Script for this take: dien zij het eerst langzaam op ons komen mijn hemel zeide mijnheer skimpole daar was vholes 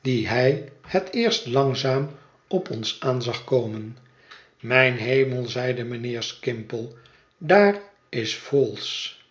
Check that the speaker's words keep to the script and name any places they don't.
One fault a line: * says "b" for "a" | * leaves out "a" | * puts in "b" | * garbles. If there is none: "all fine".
* says "hij" for "zij"
* puts in "aan zag"
* says "is" for "was"